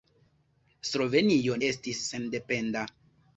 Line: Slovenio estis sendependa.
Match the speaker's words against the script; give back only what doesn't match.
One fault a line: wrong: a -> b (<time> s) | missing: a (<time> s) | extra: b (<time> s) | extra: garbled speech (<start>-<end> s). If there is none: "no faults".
no faults